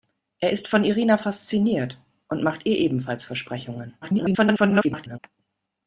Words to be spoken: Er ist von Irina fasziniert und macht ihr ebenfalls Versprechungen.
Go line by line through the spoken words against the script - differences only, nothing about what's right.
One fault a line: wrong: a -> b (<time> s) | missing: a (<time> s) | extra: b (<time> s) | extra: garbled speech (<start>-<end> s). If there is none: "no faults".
extra: garbled speech (4.0-5.2 s)